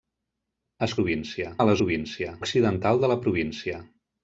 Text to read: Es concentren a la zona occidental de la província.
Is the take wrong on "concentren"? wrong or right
wrong